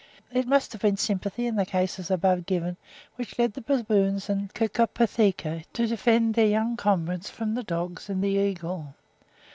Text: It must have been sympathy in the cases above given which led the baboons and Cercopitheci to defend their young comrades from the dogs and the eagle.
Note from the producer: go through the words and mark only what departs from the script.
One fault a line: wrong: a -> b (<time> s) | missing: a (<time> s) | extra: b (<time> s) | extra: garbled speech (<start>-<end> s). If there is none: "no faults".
no faults